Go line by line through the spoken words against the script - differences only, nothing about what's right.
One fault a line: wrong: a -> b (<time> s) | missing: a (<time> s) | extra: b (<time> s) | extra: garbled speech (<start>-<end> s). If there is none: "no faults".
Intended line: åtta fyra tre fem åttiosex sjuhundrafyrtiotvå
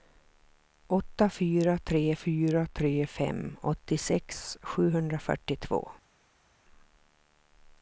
extra: fyra tre (2.1 s)